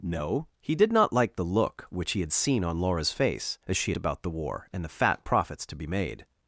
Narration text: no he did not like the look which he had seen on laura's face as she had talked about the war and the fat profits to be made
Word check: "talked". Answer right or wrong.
wrong